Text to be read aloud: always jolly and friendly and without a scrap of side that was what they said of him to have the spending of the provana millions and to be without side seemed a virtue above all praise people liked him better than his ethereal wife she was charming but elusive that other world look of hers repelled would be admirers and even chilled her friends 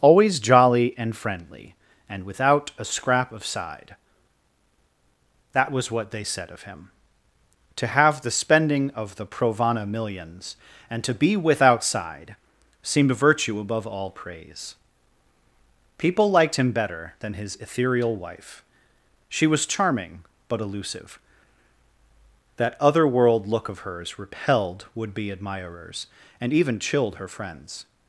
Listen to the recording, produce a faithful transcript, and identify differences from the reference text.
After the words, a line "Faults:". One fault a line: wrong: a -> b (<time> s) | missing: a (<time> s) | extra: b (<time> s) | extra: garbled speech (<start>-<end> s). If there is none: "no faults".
always jolly and friendly and without a scrap of side that was what they said of him to have the spending of the provana millions and to be without side seemed a virtue above all praise people liked him better than his ethereal wife she was charming but elusive that other world look of hers repelled would be admirers and even chilled her friends
Faults:
no faults